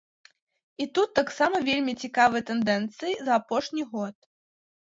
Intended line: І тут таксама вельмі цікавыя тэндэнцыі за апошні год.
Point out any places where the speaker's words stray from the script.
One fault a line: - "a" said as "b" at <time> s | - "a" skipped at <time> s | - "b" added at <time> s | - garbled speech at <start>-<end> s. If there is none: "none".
none